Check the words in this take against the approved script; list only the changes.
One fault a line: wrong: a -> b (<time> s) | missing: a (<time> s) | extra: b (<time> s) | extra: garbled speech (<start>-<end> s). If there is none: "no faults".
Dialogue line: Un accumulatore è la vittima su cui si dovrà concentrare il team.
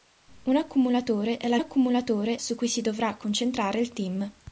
wrong: vittima -> accumulatore (1.6 s)